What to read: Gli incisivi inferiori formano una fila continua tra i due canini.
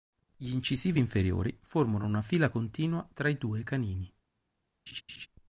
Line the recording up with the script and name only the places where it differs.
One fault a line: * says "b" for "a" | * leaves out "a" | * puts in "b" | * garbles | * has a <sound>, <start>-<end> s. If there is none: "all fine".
* has a laugh, 4.9-5.3 s